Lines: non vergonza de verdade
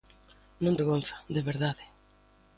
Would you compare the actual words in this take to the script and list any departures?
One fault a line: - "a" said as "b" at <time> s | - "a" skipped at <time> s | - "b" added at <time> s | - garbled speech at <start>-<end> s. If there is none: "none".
none